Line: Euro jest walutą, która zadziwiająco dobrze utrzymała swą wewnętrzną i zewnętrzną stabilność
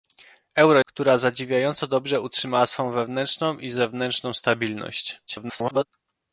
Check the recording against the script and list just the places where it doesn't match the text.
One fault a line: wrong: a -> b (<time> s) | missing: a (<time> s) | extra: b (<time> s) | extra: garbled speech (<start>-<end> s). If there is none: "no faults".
missing: jest walutą (0.8 s)
extra: garbled speech (5.3-5.9 s)